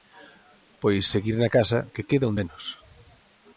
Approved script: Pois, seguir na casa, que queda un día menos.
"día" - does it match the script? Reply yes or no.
no